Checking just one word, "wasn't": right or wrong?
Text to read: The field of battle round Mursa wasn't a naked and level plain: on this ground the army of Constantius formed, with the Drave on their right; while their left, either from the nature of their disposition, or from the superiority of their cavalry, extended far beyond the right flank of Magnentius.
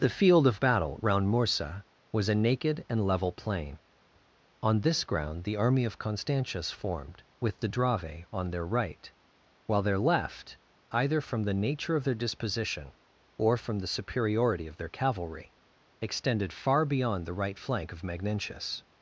wrong